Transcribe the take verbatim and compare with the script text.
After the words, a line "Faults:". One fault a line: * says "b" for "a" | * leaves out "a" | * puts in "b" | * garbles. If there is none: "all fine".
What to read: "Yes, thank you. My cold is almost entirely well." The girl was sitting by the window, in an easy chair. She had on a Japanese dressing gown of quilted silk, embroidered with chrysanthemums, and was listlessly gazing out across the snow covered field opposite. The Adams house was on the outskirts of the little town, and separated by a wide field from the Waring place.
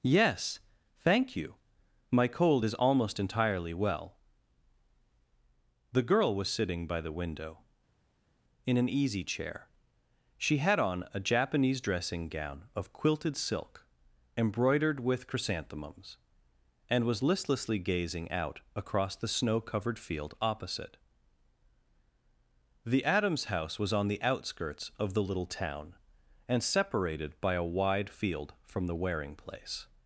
"Yes, thank you. My cold is almost entirely well." The girl was sitting by the window, in an easy chair. She had on a Japanese dressing gown of quilted silk, embroidered with chrysanthemums, and was listlessly gazing out across the snow covered field opposite. The Adams house was on the outskirts of the little town, and separated by a wide field from the Waring place.
Faults:
all fine